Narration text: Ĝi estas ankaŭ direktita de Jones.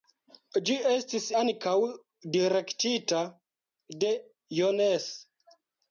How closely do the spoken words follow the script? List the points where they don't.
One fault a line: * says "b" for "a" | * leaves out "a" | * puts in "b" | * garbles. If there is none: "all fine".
* says "estis" for "estas"